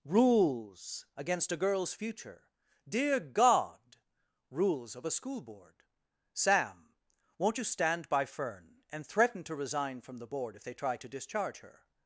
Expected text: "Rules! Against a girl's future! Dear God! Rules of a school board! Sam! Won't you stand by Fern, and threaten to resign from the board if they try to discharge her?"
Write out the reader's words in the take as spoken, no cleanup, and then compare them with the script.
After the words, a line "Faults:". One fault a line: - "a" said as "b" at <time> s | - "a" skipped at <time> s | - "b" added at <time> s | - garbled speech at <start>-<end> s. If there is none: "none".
"Rules! Against a girl's future! Dear God! Rules of a school board! Sam! Won't you stand by Fern, and threaten to resign from the board if they try to discharge her?"
Faults:
none